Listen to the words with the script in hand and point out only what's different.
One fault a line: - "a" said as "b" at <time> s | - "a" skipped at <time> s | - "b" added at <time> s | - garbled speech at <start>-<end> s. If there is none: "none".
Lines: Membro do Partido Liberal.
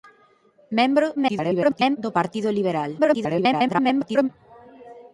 - garbled speech at 1.2-2.0 s
- garbled speech at 3.0-4.3 s